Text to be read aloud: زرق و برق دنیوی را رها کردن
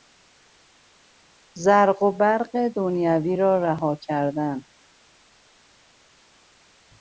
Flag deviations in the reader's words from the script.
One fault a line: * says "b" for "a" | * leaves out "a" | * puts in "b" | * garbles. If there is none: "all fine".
all fine